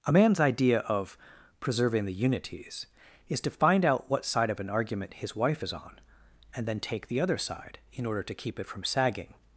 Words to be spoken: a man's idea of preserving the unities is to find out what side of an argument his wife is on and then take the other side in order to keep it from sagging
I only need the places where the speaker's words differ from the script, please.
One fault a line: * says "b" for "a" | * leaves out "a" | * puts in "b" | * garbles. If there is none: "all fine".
all fine